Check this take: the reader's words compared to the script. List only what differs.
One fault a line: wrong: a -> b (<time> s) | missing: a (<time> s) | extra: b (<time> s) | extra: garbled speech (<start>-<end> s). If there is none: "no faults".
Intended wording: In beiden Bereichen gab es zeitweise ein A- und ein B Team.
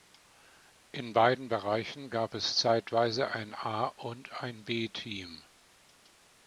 no faults